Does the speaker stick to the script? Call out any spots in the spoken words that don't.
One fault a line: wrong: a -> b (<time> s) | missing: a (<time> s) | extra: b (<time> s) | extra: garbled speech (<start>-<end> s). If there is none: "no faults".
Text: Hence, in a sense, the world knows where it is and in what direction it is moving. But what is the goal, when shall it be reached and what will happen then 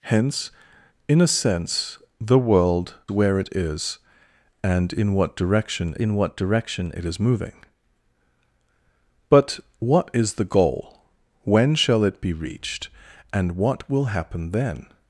missing: knows (3.0 s)
extra: in what direction (5.9 s)